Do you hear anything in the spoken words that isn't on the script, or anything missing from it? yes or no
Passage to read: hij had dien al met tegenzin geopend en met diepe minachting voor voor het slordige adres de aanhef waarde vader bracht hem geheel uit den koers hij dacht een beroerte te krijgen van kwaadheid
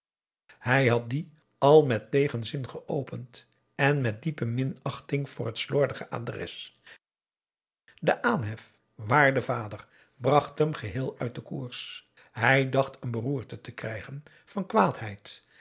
yes